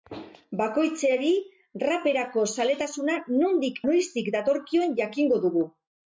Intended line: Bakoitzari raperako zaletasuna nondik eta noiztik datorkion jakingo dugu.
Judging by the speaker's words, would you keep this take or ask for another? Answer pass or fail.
fail